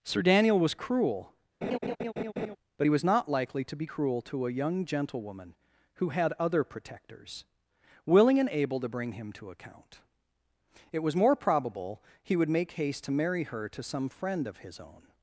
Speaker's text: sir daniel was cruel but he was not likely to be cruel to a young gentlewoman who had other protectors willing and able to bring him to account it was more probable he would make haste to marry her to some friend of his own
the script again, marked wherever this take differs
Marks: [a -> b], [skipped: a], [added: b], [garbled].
sir daniel was cruel but he was not likely to be cruel to a young gentlewoman who had other protectors willing and able to bring him to account it was more probable he would make haste to marry her to some friend of his own